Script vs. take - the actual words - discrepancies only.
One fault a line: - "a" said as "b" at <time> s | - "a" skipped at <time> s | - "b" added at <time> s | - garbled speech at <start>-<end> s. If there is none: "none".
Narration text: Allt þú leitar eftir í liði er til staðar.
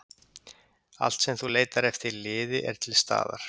- "sem" added at 1.2 s